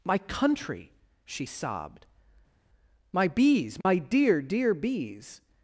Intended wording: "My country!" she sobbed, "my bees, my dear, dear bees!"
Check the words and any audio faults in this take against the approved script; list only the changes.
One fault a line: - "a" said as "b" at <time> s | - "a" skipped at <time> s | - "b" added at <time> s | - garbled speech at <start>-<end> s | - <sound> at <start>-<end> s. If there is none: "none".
none